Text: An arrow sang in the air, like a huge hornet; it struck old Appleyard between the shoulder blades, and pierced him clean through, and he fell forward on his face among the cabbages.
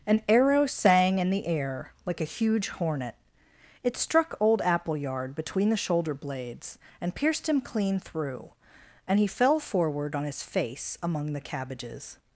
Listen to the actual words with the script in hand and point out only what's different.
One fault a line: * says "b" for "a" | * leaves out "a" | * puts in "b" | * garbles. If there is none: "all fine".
all fine